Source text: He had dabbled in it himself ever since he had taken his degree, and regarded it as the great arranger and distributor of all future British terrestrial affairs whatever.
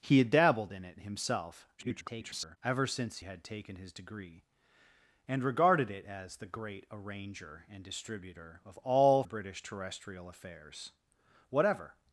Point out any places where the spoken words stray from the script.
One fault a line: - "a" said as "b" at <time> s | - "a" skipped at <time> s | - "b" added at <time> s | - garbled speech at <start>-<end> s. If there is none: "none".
- garbled speech at 1.8-2.6 s
- "he" skipped at 3.2 s
- "future" skipped at 9.2 s